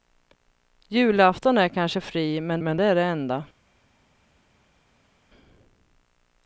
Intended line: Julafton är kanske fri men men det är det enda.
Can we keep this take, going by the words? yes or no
yes